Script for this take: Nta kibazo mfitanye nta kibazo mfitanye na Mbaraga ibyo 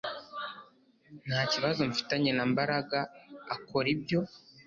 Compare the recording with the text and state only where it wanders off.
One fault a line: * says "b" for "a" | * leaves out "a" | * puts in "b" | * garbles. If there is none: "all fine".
* leaves out "nta kibazo mfitanye"
* puts in "akora"